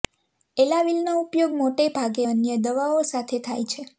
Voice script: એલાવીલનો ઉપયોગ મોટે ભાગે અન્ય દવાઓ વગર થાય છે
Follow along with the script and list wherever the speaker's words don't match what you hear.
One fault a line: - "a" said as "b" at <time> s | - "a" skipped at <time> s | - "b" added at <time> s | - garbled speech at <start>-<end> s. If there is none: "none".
- "વગર" said as "સાથે" at 3.0 s